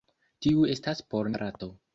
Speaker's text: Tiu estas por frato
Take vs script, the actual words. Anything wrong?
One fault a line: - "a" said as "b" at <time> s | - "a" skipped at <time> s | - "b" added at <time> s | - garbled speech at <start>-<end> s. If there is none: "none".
none